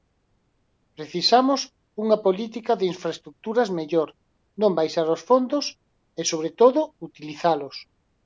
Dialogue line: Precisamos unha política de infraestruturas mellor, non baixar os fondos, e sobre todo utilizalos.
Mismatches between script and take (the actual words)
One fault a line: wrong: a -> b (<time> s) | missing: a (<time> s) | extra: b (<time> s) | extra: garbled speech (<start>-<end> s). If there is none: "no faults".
no faults